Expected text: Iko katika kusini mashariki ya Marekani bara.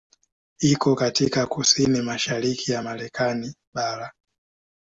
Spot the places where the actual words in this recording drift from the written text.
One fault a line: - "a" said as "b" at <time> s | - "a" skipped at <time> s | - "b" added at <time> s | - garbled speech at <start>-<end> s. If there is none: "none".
none